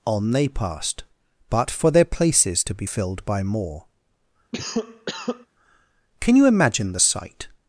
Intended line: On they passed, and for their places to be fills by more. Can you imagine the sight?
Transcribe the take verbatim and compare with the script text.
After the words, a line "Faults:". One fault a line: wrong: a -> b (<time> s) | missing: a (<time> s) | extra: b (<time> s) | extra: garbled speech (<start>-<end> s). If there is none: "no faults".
On they passed, but for their places to be filled by more. Can you imagine the sight?
Faults:
wrong: and -> but (1.5 s)
wrong: fills -> filled (2.8 s)